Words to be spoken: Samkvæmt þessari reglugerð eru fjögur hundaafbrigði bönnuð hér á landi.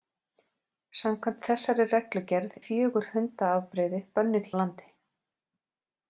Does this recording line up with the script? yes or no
no